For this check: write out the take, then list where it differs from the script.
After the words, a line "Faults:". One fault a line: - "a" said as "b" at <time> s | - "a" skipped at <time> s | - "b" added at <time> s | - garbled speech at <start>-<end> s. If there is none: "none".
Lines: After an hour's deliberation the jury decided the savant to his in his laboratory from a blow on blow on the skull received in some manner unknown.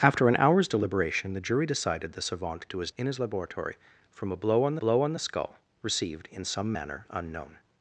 After an hour's deliberation the jury decided the savant to his in his laboratory from a blow on blow on the skull received in some manner unknown.
Faults:
none